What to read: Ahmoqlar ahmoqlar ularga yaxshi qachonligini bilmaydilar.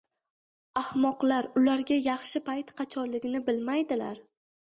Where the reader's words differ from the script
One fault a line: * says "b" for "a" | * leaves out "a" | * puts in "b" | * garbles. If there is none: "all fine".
* leaves out "ahmoqlar"
* puts in "payt"